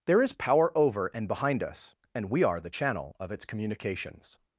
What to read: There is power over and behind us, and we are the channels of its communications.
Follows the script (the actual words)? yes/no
no